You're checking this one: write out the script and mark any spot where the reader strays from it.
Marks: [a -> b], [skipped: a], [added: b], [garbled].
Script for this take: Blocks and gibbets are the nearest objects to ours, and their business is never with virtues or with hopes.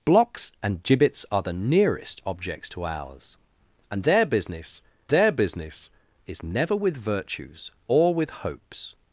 Blocks and gibbets are the nearest objects to ours, and their business [added: their business] is never with virtues or with hopes.